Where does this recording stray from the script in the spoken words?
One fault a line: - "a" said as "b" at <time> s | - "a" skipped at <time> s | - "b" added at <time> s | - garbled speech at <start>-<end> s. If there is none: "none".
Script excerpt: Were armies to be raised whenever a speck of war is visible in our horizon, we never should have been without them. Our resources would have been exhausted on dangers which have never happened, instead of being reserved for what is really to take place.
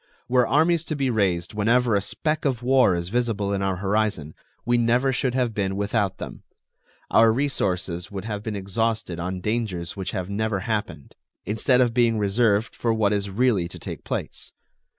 none